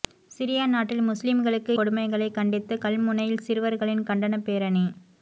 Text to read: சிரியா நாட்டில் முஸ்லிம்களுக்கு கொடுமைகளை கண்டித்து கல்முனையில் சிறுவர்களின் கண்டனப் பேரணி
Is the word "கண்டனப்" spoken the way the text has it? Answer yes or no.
yes